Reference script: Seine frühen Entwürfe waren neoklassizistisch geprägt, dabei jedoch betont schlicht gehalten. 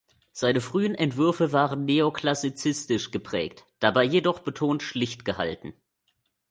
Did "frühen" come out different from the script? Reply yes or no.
no